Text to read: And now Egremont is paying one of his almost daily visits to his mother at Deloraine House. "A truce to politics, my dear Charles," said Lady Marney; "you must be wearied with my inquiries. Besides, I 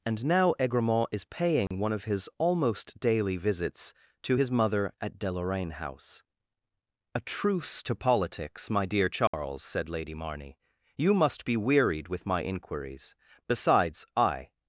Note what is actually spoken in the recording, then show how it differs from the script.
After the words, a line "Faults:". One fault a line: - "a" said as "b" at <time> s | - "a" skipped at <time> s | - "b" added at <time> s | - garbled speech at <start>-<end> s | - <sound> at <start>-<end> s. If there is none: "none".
And now Egremont is paying one of his almost daily visits to his mother at Deloraine House. "A truce to politics, my dear Charles," said Lady Marney; "you must be wearied with my inquiries. Besides, I
Faults:
- dropout at 1.7-1.7 s
- dropout at 9.3-9.3 s